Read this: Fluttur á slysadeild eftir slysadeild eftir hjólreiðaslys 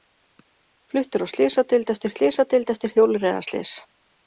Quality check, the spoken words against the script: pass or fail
pass